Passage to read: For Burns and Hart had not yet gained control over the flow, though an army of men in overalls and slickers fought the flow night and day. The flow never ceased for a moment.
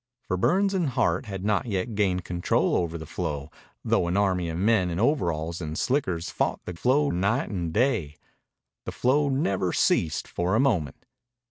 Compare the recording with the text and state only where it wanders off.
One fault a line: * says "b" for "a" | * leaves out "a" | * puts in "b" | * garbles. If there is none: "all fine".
all fine